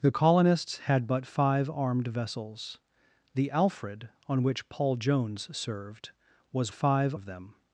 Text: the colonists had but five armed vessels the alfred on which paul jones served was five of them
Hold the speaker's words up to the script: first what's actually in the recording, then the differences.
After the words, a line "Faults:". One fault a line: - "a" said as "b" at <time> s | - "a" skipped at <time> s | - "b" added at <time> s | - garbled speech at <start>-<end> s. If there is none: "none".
the colonists had but five armed vessels the alfred on which paul jones served was five of them
Faults:
none